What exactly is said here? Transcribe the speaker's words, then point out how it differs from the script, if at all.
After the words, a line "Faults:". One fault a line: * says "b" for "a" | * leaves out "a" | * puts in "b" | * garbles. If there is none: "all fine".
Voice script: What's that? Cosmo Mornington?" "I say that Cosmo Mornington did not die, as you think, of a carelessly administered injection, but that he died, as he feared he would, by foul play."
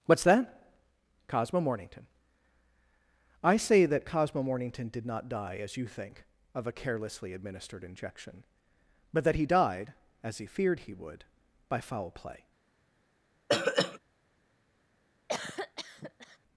What's that? Cosmo Mornington?" "I say that Cosmo Mornington did not die, as you think, of a carelessly administered injection, but that he died, as he feared he would, by foul play."
Faults:
all fine